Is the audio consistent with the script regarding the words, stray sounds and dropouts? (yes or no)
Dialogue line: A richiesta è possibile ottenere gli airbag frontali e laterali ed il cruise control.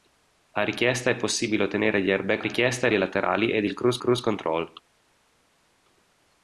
no